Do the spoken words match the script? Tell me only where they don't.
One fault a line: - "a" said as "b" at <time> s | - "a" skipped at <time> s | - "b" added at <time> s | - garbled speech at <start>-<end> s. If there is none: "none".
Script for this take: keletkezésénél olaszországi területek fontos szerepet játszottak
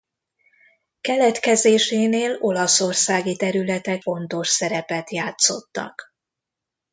none